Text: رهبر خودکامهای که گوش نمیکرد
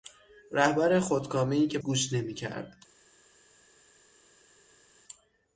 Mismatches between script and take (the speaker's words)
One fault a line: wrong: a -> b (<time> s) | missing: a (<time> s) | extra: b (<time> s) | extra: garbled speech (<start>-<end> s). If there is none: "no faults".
no faults